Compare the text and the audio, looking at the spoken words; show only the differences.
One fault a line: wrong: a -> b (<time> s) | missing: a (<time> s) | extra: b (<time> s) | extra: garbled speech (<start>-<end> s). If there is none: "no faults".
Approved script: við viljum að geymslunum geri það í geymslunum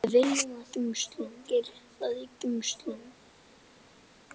no faults